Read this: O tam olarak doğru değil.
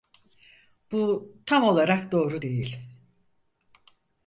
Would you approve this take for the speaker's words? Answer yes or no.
no